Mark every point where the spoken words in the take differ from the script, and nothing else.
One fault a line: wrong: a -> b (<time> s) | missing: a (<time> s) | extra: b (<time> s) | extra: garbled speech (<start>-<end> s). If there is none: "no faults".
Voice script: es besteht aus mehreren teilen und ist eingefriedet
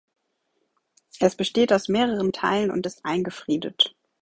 no faults